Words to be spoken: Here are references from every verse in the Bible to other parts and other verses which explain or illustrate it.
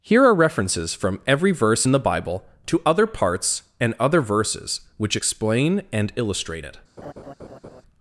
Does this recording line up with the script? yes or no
no